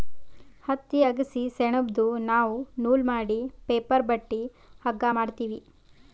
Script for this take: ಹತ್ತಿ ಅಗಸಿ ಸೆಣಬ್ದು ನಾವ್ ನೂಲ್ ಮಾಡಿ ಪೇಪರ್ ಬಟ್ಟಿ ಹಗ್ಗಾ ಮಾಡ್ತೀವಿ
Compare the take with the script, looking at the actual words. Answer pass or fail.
pass